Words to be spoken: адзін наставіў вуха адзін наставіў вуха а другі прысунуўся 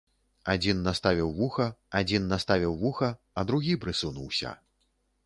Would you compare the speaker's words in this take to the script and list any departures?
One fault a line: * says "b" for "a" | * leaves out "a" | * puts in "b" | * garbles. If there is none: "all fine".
all fine